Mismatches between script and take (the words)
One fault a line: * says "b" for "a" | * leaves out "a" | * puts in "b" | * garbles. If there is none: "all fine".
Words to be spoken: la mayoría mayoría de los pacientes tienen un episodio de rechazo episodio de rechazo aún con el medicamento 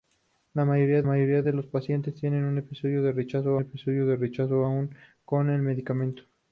all fine